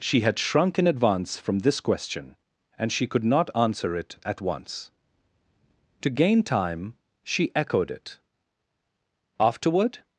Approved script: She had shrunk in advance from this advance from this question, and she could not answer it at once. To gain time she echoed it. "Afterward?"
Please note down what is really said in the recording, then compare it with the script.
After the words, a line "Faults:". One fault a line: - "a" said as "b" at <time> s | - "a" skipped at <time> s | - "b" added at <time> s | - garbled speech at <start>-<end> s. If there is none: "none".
She had shrunk in advance from this question, and she could not answer it at once. To gain time she echoed it. "Afterward?"
Faults:
- "advance from this" skipped at 1.8 s